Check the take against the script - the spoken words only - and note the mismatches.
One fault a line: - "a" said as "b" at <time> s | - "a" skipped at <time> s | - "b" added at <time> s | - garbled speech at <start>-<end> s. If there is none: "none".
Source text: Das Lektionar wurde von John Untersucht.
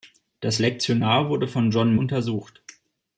none